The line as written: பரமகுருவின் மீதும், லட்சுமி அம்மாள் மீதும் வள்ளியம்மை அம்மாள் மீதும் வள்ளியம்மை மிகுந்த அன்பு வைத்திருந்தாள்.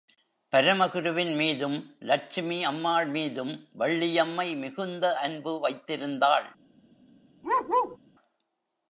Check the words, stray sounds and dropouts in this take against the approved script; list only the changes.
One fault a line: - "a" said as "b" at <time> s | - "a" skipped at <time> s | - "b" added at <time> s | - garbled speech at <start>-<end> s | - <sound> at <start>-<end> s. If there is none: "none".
- "அம்மாள் மீதும் வள்ளியம்மை" skipped at 4.5 s
- bark at 7.4-8.0 s